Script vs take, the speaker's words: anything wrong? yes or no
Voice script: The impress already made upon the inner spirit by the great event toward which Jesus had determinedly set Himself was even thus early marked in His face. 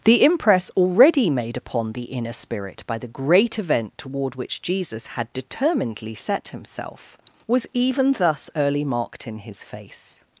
no